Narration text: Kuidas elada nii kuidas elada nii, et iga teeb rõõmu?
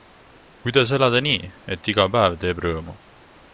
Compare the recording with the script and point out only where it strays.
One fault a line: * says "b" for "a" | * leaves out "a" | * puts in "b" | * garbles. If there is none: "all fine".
* leaves out "kuidas elada nii"
* puts in "päev"